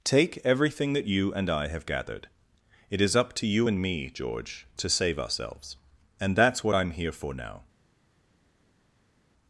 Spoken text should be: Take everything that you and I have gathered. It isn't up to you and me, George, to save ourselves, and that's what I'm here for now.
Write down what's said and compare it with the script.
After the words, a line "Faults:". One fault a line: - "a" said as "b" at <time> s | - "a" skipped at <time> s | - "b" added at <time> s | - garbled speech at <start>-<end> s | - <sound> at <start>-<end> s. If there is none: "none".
Take everything that you and I have gathered. It is up to you and me, George, to save ourselves, and that's what I'm here for now.
Faults:
- "isn't" said as "is" at 3.0 s